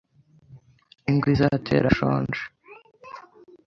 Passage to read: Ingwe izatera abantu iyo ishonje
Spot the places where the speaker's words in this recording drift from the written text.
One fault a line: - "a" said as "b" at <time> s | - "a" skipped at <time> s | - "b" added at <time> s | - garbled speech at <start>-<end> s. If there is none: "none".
- "abantu iyo" skipped at 1.9 s